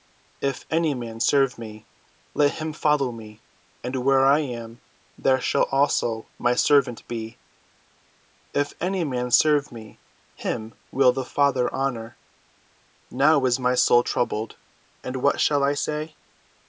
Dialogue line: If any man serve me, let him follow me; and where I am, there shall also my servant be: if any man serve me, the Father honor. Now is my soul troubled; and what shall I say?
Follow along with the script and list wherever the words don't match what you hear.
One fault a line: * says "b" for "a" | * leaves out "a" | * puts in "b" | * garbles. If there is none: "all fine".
* puts in "him will"